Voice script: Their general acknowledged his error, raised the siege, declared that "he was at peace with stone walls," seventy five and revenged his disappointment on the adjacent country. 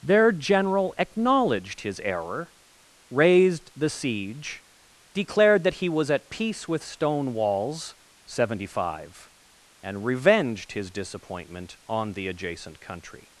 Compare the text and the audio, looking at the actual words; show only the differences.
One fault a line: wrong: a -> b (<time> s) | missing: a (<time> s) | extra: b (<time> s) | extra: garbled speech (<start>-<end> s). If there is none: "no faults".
no faults